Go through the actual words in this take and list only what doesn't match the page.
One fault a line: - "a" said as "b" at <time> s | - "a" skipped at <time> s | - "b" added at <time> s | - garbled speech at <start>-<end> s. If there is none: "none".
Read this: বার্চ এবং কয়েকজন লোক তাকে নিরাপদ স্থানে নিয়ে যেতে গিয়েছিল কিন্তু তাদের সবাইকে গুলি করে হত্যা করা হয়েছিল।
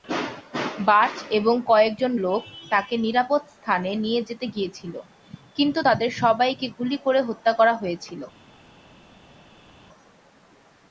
none